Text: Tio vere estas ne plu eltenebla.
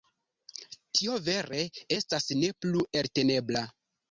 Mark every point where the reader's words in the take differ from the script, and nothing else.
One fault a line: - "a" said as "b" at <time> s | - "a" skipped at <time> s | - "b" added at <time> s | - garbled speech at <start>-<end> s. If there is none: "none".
none